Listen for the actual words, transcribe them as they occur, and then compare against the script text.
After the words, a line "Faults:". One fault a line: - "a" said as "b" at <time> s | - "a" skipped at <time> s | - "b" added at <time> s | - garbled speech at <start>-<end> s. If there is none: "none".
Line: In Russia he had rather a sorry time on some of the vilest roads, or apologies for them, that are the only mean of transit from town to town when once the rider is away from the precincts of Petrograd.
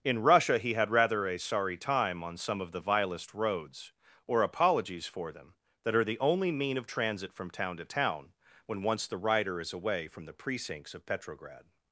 In Russia he had rather a sorry time on some of the vilest roads, or apologies for them, that are the only mean of transit from town to town when once the rider is away from the precincts of Petrograd.
Faults:
none